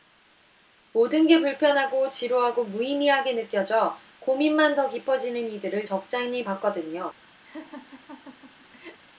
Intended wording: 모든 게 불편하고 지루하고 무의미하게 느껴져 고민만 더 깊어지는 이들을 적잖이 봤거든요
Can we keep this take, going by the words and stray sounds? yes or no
no